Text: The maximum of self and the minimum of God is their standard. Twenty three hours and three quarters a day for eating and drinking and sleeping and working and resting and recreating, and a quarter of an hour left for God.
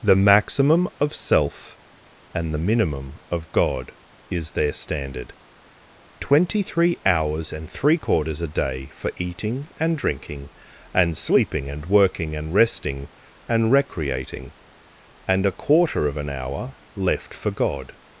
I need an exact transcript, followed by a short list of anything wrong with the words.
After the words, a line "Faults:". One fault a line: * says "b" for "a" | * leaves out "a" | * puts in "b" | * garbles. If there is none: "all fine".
The maximum of self and the minimum of God is their standard. Twenty three hours and three quarters a day for eating and drinking and sleeping and working and resting and recreating, and a quarter of an hour left for God.
Faults:
all fine